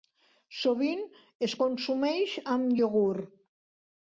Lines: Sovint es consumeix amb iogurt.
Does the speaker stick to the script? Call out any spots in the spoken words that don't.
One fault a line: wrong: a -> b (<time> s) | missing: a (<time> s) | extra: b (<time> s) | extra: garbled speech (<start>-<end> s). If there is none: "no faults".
no faults